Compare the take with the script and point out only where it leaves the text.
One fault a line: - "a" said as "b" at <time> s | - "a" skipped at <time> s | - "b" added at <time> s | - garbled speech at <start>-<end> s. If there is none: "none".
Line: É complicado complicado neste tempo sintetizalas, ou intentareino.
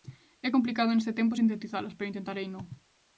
- "complicado" skipped at 0.9 s
- "ou" said as "pero" at 2.0 s